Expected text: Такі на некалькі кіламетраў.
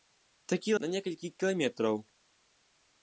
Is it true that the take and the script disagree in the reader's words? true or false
false